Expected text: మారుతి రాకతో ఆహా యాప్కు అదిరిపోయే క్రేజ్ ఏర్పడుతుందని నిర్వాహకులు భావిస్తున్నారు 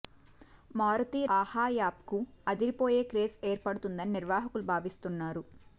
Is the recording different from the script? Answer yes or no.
yes